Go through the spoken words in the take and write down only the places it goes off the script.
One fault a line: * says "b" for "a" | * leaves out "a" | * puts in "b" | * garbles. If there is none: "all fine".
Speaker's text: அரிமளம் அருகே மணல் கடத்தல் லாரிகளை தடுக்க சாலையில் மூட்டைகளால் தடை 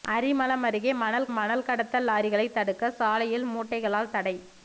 * puts in "மணல்"